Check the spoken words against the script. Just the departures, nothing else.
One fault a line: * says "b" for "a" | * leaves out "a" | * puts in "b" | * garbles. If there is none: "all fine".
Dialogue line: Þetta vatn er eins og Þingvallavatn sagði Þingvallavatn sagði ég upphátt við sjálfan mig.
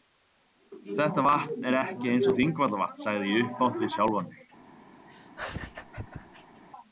* puts in "ekki"
* leaves out "Þingvallavatn sagði"